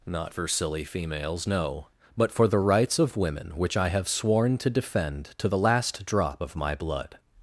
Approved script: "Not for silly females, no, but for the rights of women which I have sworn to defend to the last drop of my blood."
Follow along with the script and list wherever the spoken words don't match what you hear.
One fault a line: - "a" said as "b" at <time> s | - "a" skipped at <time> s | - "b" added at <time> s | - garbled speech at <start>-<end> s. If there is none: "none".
none